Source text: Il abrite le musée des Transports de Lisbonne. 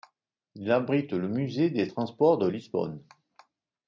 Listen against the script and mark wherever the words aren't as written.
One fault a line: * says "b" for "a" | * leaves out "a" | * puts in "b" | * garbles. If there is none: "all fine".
all fine